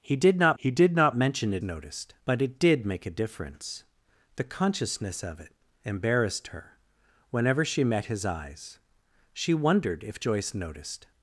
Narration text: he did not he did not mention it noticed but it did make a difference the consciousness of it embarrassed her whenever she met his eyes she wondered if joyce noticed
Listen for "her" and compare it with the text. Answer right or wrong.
right